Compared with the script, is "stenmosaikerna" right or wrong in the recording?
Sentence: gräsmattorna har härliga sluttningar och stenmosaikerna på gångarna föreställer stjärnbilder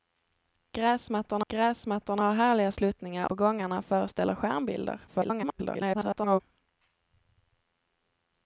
wrong